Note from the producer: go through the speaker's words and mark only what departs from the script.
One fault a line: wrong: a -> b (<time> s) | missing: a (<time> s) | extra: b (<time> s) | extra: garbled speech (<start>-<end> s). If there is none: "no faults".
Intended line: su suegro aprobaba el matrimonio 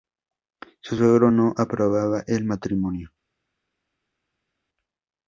extra: no (1.3 s)